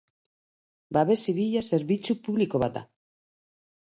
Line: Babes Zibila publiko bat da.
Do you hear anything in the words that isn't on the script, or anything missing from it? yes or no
yes